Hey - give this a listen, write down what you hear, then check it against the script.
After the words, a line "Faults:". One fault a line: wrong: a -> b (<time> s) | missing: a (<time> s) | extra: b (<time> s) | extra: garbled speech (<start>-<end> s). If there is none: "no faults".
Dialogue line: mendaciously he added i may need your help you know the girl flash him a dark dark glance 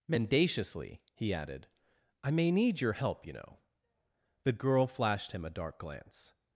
mendaciously he added i may need your help you know the girl flashed him a dark glance
Faults:
wrong: flash -> flashed (4.9 s)
missing: dark (5.8 s)